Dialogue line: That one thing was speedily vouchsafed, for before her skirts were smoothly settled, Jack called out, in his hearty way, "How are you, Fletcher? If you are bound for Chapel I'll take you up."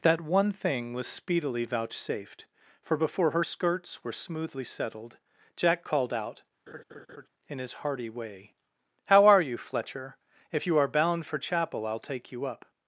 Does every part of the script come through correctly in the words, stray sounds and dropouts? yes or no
no